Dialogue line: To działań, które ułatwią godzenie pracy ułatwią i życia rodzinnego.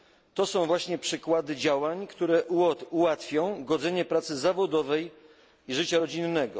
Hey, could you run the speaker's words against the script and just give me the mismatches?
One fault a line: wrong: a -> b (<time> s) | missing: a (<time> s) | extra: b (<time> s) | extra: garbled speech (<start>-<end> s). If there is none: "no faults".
extra: są właśnie przykłady (0.5 s)
wrong: ułatwią -> zawodowej (4.4 s)